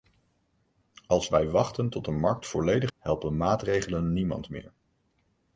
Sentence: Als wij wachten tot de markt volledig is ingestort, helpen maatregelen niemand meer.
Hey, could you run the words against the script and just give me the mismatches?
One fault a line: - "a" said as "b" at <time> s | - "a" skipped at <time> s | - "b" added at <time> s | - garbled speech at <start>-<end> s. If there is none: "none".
- "is ingestort" skipped at 2.9 s